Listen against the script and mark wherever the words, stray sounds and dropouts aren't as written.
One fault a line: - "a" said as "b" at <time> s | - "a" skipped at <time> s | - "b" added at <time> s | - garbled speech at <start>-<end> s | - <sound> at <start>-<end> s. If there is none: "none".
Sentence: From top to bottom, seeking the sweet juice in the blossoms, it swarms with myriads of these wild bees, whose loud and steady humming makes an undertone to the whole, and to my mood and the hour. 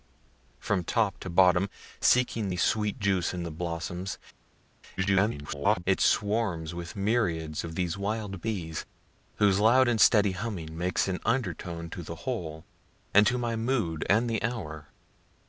- garbled speech at 5.0-5.8 s